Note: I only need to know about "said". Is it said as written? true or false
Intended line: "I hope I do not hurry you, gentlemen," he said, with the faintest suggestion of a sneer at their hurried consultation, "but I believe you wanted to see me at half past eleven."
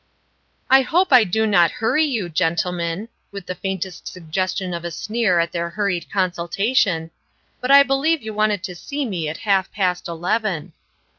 false